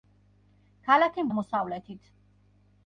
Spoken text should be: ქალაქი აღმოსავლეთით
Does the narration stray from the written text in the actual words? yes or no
no